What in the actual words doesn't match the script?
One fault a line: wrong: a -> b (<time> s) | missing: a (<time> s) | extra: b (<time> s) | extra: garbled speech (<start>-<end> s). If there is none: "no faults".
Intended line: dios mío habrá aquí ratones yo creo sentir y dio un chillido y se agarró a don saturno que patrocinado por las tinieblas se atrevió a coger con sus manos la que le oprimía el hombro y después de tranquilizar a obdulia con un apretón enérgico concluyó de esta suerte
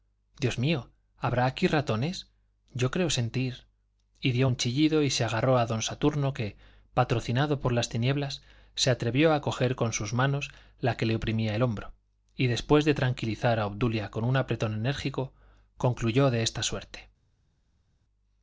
no faults